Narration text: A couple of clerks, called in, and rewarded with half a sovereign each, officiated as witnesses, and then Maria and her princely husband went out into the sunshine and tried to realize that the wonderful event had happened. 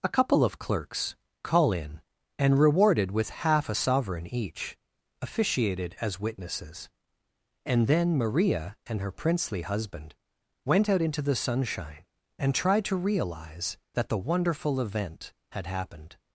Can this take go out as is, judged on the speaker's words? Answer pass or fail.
fail